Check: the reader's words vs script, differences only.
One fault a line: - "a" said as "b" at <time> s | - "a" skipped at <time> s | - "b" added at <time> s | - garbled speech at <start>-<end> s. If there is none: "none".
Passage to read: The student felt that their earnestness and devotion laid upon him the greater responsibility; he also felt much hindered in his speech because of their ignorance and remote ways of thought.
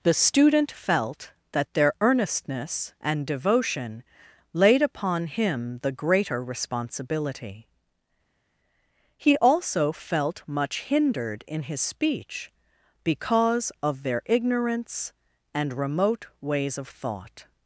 none